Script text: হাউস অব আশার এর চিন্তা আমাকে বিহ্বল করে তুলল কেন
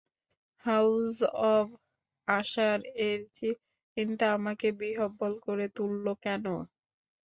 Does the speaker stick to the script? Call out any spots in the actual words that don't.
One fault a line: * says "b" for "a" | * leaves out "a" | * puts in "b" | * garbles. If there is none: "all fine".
all fine